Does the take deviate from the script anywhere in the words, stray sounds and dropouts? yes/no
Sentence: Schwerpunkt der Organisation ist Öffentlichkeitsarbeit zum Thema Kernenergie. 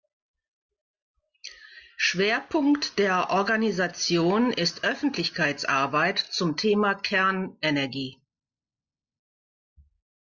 no